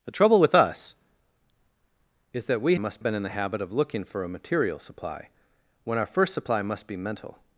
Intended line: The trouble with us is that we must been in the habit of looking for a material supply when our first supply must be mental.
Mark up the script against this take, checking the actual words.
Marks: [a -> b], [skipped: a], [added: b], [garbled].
The trouble with us is that we must been in the habit of looking for a material supply when our first supply must be mental.